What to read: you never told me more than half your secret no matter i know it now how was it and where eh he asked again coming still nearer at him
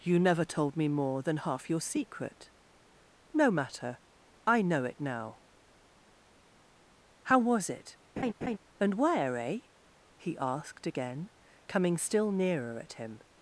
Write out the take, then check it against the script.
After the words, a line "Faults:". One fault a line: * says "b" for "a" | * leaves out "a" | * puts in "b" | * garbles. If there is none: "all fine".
you never told me more than half your secret no matter i know it now how was it and where eh he asked again coming still nearer at him
Faults:
all fine